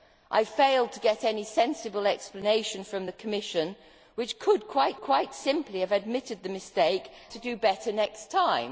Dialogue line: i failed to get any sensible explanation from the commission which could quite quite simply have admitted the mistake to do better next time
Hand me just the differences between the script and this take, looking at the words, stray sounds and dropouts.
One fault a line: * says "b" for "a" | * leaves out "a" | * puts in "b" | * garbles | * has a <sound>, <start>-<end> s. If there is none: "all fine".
all fine